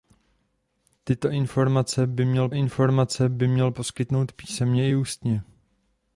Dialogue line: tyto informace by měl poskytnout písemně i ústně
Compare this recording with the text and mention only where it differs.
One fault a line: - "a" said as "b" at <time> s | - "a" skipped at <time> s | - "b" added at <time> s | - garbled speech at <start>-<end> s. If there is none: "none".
- "informace by měl" added at 2.5 s